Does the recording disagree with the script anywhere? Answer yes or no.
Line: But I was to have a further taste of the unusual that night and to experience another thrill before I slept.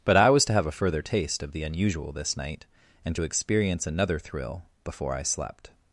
yes